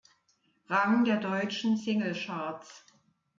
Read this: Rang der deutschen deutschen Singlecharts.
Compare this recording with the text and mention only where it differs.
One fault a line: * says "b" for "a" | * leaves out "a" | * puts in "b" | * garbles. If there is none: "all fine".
* leaves out "deutschen"